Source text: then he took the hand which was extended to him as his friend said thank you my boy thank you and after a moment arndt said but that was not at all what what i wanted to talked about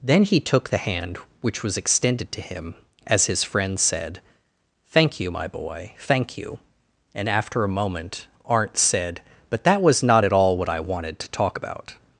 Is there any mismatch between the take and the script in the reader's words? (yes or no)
yes